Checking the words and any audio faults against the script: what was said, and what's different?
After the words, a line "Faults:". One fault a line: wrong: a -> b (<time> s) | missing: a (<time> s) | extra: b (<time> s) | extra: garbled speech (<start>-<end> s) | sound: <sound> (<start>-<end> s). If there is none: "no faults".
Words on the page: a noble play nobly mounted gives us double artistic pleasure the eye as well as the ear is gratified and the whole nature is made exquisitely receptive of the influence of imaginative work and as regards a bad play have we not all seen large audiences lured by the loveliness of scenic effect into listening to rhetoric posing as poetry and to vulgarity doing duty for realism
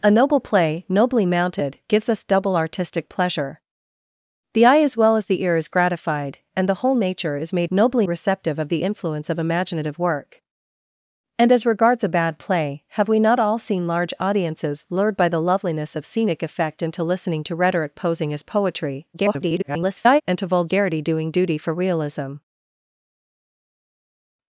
a noble play nobly mounted gives us double artistic pleasure the eye as well as the ear is gratified and the whole nature is made nobly receptive of the influence of imaginative work and as regards a bad play have we not all seen large audiences lured by the loveliness of scenic effect into listening to rhetoric posing as poetry [garbled] and to vulgarity doing duty for realism
Faults:
wrong: exquisitely -> nobly (7.7 s)
extra: garbled speech (19.1-20.2 s)